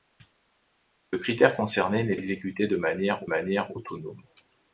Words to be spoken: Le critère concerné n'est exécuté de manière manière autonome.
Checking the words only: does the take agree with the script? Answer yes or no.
yes